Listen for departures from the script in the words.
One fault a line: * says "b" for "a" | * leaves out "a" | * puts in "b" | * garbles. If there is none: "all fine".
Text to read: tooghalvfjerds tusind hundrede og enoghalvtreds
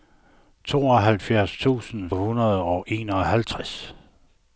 all fine